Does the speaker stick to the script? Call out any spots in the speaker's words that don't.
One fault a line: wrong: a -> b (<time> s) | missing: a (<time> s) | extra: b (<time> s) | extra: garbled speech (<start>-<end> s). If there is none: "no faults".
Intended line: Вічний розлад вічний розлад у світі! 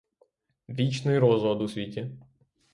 missing: вічний розлад (1.6 s)